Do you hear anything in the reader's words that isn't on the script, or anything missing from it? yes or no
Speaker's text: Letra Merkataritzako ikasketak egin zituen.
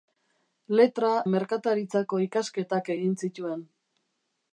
no